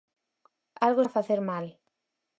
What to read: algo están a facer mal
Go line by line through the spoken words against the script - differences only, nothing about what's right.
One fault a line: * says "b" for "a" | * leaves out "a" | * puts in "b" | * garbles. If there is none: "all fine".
* leaves out "están"